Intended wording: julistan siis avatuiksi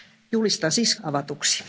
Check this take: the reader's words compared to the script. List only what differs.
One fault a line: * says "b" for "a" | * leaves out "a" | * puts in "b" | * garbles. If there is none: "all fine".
all fine